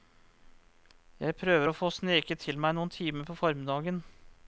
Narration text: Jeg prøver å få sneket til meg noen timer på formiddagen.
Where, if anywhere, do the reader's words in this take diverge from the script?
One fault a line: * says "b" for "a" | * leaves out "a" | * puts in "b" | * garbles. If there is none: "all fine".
all fine